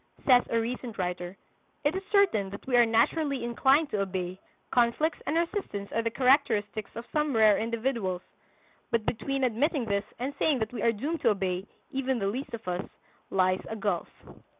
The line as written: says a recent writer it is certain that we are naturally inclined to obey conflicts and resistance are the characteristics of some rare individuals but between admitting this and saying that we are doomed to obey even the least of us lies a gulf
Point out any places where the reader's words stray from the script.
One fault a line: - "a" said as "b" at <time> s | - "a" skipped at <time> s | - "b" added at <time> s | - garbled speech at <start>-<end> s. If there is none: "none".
none